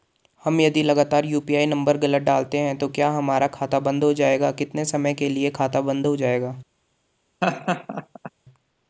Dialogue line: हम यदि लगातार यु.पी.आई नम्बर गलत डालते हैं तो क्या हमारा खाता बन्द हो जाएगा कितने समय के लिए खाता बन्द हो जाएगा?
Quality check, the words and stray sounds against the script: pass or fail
fail